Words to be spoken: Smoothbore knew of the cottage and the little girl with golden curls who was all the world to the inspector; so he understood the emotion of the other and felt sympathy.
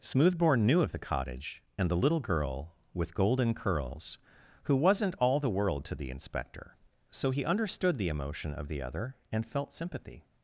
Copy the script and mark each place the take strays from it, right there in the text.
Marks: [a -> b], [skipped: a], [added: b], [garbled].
Smoothbore knew of the cottage and the little girl with golden curls who [was -> wasn't] all the world to the inspector; so he understood the emotion of the other and felt sympathy.